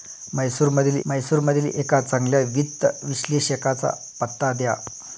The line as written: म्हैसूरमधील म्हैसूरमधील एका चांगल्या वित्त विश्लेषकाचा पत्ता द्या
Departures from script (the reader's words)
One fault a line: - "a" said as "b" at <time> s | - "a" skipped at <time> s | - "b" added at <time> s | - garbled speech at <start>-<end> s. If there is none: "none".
none